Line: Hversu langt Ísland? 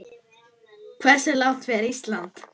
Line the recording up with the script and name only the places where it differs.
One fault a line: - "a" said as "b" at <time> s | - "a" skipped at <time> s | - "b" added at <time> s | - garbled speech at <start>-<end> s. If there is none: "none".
- "fer" added at 1.7 s